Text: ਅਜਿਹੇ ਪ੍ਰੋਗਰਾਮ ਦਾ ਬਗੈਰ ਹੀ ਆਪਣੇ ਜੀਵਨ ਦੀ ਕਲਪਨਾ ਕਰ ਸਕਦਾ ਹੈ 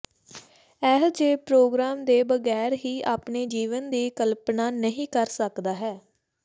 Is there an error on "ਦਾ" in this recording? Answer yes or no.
yes